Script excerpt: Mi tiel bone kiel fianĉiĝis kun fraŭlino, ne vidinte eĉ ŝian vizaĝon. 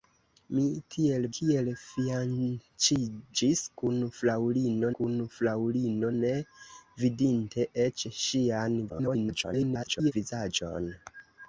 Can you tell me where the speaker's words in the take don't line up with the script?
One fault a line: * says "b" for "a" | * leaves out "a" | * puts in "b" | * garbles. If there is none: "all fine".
* leaves out "bone"
* puts in "kun fraŭlino"
* garbles